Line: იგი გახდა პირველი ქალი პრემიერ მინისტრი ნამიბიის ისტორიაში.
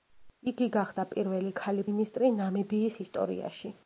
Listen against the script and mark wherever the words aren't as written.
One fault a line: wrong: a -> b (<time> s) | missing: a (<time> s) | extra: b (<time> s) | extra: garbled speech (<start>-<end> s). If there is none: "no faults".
missing: პრემიერ (1.9 s)